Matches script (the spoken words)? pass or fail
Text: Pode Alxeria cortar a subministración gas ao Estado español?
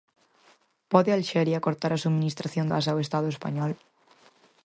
pass